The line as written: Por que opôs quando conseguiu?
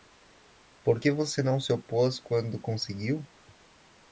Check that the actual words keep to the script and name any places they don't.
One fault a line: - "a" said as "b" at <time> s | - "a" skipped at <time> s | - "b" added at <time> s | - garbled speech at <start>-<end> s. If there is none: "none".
- "você não se" added at 1.1 s